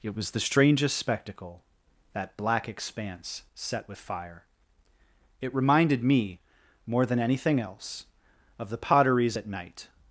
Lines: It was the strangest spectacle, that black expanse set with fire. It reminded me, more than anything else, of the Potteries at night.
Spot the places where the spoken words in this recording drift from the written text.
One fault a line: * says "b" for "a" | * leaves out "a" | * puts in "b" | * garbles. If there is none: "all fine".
all fine